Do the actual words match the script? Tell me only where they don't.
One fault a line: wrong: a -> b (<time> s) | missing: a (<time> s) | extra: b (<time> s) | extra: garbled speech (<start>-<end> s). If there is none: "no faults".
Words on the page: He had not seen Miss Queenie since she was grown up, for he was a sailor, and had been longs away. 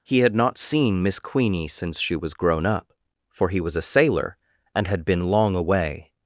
wrong: longs -> long (5.3 s)